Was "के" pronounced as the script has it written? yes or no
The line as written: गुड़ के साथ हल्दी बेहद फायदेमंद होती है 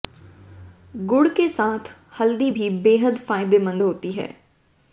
yes